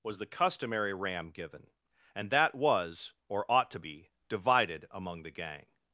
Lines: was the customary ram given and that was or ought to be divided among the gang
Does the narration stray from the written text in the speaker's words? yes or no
no